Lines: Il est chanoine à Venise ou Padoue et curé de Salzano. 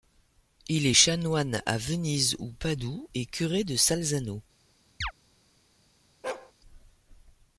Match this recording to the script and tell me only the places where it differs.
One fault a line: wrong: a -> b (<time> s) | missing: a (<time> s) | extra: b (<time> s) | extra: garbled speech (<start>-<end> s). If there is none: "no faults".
no faults